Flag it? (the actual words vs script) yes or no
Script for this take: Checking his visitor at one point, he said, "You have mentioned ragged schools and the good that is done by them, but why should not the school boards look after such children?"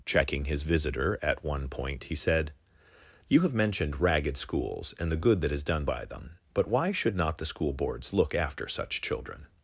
no